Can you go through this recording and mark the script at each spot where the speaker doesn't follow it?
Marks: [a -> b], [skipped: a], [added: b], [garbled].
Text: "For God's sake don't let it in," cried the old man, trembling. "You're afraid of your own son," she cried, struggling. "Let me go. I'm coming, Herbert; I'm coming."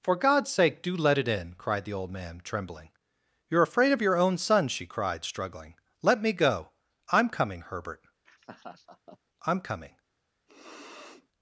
"For God's sake [don't -> do] let it in," cried the old man, trembling. "You're afraid of your own son," she cried, struggling. "Let me go. I'm coming, Herbert; I'm coming."